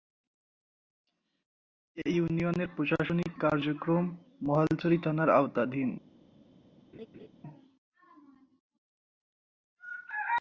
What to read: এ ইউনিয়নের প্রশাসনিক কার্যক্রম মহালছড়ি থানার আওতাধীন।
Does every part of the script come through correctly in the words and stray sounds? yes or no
no